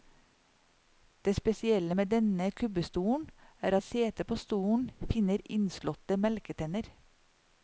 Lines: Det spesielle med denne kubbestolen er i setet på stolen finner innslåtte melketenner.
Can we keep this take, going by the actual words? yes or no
yes